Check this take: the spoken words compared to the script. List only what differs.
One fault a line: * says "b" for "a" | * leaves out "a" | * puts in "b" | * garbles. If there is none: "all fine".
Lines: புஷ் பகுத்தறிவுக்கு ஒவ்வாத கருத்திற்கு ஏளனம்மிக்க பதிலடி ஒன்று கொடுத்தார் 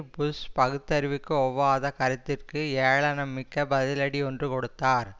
all fine